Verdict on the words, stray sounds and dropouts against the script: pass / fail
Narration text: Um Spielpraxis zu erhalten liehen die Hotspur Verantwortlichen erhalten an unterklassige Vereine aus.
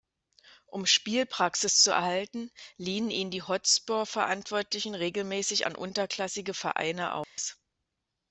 fail